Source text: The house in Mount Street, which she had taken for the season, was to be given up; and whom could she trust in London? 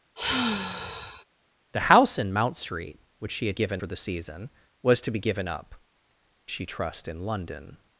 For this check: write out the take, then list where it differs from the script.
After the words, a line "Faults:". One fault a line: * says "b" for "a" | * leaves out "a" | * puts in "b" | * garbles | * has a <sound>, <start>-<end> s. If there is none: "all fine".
The house in Mount Street, which she had given for the season, was to be given up; she trust in London?
Faults:
* has a sigh, 0.2-1.2 s
* says "given" for "taken"
* leaves out "and whom could"